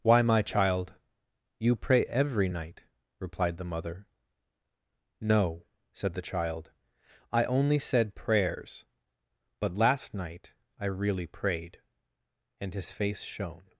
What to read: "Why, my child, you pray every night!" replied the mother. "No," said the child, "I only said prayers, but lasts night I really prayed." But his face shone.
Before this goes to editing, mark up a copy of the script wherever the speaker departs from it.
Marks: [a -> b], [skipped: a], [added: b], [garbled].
"Why, my child, you pray every night!" replied the mother. "No," said the child, "I only said prayers, but [lasts -> last] night I really prayed." [But -> And] his face shone.